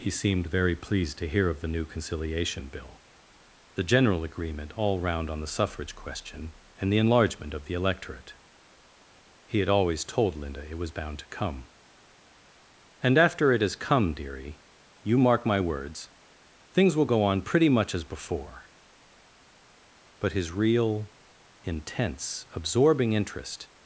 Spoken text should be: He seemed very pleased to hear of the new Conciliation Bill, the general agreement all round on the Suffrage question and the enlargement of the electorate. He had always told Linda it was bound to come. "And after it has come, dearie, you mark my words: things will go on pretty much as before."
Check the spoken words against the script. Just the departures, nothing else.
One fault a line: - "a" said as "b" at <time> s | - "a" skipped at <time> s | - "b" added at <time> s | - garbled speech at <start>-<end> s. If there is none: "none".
- "But his real intense absorbing interest" added at 20.2 s